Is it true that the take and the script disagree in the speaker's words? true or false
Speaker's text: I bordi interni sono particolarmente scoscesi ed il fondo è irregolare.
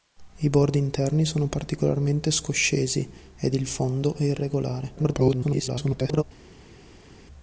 true